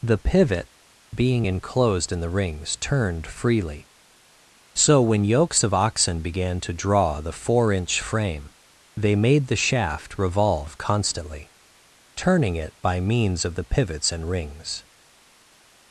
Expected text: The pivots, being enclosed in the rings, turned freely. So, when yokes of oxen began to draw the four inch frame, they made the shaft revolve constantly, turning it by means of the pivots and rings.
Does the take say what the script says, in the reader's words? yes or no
no